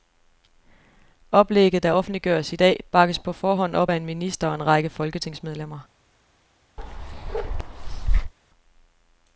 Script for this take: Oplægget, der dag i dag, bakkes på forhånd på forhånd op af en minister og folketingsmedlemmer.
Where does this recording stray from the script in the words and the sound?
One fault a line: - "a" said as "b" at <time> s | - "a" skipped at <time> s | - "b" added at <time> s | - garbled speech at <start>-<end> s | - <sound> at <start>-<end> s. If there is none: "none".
- "dag" said as "offentliggøres" at 1.9 s
- "på forhånd" skipped at 3.8 s
- "en række" added at 4.5 s
- bark at 6.8-8.3 s